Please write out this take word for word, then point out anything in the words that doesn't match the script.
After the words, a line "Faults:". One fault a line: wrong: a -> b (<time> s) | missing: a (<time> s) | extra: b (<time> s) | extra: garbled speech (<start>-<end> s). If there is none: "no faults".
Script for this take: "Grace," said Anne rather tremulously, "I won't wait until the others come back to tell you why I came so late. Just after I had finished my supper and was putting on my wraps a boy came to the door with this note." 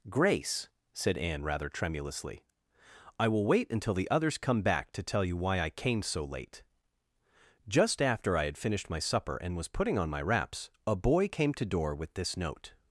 "Grace," said Anne rather tremulously, "I will wait until the others come back to tell you why I came so late. Just after I had finished my supper and was putting on my wraps a boy came to door with this note."
Faults:
wrong: won't -> will (3.3 s)
missing: the (11.7 s)